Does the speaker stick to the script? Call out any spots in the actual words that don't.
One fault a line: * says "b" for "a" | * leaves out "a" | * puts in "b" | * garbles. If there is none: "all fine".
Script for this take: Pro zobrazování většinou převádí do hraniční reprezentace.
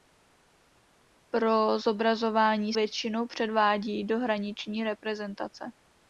all fine